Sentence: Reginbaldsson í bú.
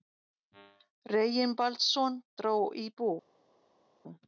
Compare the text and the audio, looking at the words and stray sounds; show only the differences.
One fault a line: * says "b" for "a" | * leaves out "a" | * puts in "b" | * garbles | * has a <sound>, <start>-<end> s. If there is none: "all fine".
* puts in "dró"